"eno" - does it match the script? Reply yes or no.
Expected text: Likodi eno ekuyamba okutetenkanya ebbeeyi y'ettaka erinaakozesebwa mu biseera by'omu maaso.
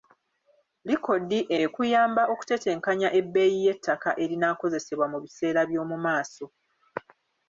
no